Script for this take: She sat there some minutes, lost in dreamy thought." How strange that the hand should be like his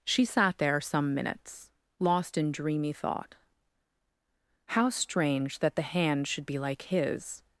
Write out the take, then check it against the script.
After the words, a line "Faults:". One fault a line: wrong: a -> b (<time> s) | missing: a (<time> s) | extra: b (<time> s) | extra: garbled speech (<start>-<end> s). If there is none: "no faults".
She sat there some minutes, lost in dreamy thought." How strange that the hand should be like his
Faults:
no faults